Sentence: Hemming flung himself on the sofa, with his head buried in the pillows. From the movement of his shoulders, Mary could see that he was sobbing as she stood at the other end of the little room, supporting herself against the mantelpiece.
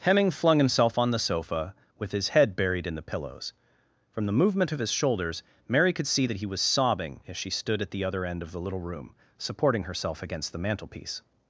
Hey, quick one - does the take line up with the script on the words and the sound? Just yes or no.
yes